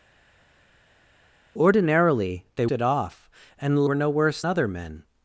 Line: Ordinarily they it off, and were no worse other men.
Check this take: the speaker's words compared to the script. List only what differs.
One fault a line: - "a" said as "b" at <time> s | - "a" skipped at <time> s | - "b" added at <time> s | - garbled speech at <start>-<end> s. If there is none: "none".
none